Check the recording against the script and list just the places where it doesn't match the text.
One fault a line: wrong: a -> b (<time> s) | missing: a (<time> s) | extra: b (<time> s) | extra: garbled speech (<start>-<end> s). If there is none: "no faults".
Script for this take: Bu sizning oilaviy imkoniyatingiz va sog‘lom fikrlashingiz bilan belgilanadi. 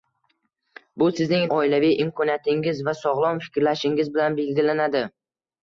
no faults